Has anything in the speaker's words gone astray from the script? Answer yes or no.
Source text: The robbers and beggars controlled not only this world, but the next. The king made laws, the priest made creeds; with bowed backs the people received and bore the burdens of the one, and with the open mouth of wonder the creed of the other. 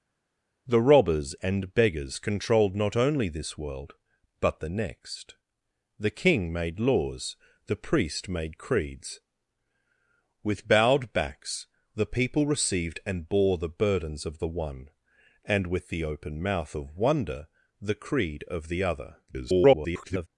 yes